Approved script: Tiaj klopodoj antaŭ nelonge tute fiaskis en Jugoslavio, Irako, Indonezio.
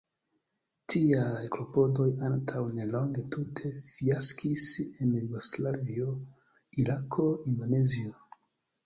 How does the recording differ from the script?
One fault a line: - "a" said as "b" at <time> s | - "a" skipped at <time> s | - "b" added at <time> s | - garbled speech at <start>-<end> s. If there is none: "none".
none